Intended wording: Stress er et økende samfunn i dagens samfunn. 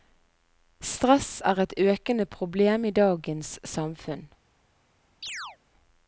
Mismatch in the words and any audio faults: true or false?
true